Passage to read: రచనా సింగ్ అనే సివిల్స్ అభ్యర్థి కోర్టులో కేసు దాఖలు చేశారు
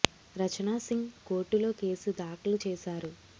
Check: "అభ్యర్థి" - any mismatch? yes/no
yes